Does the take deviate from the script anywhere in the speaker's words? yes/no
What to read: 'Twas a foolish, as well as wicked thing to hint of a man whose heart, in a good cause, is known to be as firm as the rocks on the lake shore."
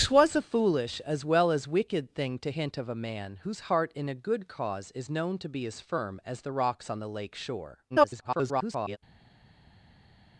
yes